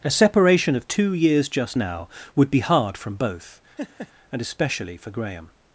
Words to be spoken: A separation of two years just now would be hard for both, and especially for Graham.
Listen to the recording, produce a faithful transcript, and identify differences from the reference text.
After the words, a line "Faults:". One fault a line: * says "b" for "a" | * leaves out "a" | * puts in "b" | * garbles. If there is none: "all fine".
A separation of two years just now would be hard from both, and especially for Graham.
Faults:
* says "from" for "for"